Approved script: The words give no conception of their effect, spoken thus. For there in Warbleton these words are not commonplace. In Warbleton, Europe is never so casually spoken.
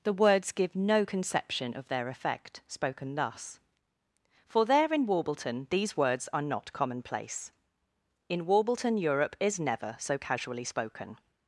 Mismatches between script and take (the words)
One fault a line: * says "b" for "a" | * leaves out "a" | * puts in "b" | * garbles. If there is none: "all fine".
all fine